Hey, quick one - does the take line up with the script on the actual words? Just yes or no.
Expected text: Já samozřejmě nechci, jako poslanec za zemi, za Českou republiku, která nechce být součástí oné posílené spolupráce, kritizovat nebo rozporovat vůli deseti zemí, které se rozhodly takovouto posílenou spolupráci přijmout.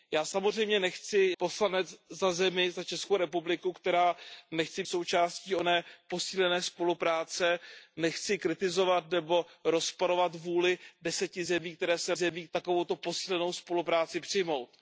no